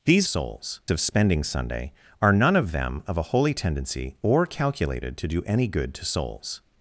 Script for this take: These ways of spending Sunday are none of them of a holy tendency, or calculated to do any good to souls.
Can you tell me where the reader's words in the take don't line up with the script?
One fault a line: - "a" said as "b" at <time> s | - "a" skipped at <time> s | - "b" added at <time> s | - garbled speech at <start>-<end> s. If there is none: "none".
- "ways" said as "souls" at 0.2 s